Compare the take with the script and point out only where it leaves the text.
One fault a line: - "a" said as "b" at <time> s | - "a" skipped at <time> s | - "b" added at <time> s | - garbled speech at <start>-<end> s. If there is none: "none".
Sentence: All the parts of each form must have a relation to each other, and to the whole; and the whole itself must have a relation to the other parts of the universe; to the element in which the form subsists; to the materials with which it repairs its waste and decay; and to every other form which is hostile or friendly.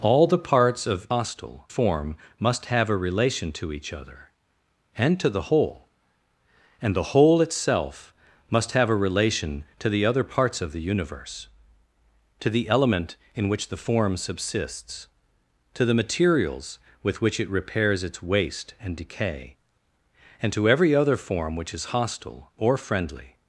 - "each" said as "hostile" at 1.1 s